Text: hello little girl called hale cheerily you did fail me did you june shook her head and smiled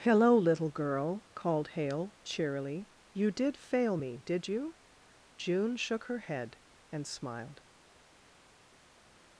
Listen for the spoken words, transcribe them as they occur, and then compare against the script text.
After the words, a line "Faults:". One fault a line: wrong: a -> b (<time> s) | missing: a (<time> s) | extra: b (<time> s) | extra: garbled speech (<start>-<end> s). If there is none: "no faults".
hello little girl called hale cheerily you did fail me did you june shook her head and smiled
Faults:
no faults